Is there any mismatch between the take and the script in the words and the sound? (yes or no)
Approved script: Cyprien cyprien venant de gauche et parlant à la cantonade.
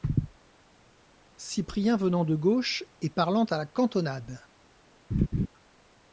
yes